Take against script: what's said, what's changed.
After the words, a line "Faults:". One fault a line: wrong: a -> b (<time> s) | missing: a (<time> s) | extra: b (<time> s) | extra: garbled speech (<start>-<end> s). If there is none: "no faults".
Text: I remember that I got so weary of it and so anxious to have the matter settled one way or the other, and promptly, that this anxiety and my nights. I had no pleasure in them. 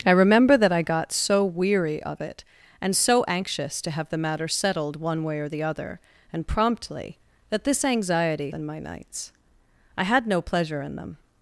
I remember that I got so weary of it and so anxious to have the matter settled one way or the other, and promptly, that this anxiety and my nights. I had no pleasure in them.
Faults:
no faults